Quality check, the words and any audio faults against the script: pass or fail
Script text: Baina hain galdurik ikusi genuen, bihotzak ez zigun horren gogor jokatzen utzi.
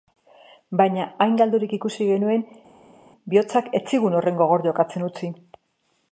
pass